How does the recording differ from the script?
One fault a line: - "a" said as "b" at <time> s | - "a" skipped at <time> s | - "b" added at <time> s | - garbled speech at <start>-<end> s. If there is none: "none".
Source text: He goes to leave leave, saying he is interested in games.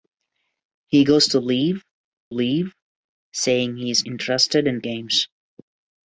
none